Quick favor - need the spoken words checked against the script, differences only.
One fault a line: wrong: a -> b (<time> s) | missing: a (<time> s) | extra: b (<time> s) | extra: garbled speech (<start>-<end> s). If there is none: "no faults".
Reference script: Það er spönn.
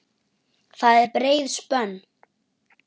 extra: breið (1.2 s)